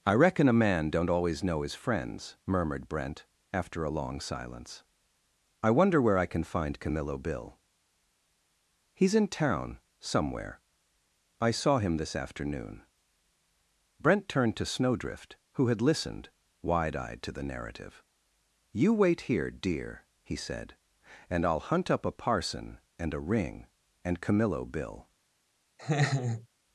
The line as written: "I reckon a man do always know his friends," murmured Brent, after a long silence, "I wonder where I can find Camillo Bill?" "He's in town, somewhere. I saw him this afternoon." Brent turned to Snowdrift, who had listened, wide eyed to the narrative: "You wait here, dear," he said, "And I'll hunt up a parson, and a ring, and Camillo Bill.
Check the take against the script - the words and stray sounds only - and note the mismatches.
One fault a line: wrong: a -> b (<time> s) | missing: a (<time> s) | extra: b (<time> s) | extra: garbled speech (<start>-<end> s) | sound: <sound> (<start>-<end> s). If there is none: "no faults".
wrong: do -> don't (0.9 s)
sound: laugh (25.8-26.5 s)